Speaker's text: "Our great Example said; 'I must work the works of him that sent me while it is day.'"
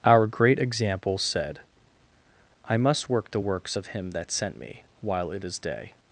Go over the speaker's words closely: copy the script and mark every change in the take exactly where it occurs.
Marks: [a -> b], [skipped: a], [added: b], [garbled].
"Our great Example said; 'I must work the works of him that sent me while it is day.'"